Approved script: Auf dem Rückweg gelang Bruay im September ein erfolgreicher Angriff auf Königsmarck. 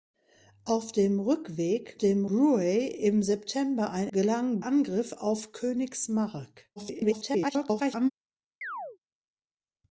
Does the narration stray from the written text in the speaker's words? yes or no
yes